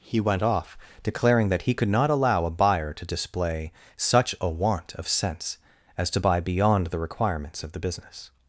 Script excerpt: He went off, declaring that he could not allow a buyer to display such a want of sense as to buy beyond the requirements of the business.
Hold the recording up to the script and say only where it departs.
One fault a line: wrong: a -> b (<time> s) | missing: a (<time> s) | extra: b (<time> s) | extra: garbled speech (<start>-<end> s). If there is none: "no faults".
no faults